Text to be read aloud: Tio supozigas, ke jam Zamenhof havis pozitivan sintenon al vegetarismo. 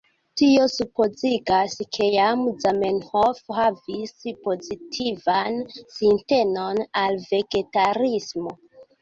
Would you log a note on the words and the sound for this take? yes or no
no